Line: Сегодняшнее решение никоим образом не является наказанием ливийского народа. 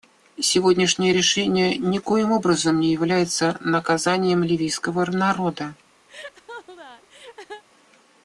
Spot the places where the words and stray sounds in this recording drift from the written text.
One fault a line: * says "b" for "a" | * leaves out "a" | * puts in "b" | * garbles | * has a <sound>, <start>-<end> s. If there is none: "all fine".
* has a laugh, 6.1-7.6 s